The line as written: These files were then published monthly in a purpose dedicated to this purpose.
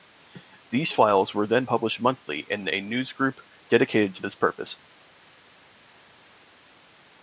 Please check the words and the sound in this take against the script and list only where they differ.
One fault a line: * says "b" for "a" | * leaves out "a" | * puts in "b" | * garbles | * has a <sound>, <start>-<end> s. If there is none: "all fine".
* says "newsgroup" for "purpose"